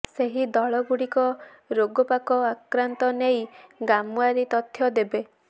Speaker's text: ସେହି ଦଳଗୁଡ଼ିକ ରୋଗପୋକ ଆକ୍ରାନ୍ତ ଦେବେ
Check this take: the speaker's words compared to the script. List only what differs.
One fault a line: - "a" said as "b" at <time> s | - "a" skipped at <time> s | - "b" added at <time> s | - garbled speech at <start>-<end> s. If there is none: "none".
- "ନେଇ ଗ୍ରାମଓ୍ବାରୀ ତଥ୍ୟ" added at 3.2 s